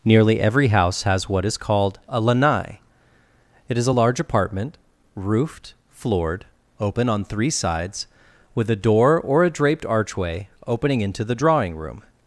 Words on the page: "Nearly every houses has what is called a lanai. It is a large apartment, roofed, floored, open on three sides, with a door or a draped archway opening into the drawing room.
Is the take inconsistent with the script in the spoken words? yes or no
yes